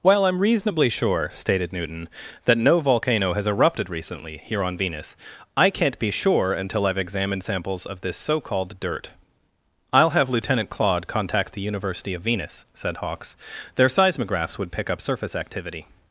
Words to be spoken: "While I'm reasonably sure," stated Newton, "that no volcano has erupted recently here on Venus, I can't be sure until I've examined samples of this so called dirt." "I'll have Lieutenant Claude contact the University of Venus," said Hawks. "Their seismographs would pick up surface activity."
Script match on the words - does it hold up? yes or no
yes